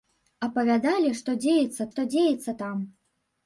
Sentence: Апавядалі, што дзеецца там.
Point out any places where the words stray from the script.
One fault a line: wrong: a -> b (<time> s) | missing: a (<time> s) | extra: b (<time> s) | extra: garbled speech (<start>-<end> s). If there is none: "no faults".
extra: што дзеецца (1.9 s)